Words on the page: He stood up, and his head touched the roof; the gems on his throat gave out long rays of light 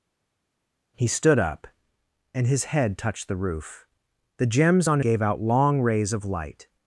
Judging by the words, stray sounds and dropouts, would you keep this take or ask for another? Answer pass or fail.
fail